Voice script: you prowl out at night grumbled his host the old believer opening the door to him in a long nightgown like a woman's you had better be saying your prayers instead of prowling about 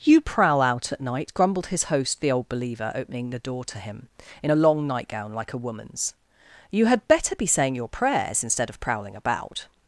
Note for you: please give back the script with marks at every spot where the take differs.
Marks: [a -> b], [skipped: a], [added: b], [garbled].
you prowl out at night grumbled his host the old believer opening the door to him in a long nightgown like a woman's you had better be saying your prayers instead of prowling about